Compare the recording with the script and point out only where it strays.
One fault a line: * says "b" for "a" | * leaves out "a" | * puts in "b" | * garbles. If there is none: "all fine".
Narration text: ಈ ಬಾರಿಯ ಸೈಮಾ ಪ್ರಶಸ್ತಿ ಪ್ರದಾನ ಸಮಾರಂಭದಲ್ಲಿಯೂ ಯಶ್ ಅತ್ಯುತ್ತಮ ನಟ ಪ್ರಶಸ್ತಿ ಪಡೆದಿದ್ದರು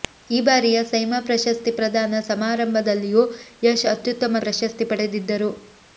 * leaves out "ನಟ"